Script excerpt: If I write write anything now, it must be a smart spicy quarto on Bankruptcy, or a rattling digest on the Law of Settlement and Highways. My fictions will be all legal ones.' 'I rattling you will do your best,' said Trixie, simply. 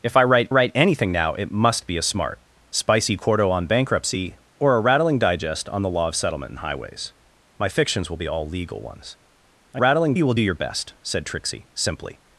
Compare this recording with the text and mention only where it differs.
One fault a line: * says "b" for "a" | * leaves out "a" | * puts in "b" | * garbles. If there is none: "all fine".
all fine